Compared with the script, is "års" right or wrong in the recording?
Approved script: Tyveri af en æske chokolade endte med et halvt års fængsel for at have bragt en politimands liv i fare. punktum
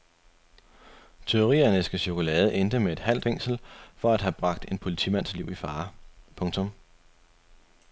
wrong